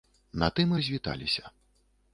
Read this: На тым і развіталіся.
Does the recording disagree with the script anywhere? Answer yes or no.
no